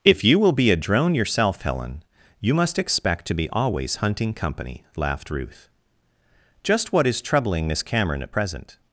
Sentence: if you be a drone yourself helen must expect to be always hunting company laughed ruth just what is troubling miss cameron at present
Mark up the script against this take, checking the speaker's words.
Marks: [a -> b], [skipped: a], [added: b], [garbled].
if you [added: will] be a drone yourself helen [added: you] must expect to be always hunting company laughed ruth just what is troubling miss cameron at present